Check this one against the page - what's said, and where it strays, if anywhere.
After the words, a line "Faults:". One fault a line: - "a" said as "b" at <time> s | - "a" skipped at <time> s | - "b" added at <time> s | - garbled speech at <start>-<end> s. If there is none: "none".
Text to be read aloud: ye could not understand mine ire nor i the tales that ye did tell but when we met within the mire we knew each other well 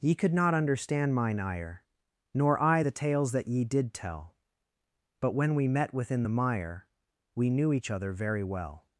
ye could not understand mine ire nor i the tales that ye did tell but when we met within the mire we knew each other very well
Faults:
- "very" added at 8.1 s